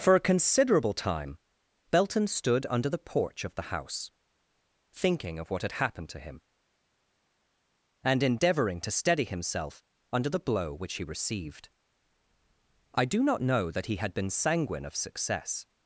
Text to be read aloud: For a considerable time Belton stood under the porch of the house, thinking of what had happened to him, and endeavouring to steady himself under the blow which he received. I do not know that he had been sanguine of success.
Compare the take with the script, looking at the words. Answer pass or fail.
pass